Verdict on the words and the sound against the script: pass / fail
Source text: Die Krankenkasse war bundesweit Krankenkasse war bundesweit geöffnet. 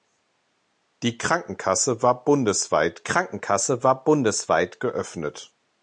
pass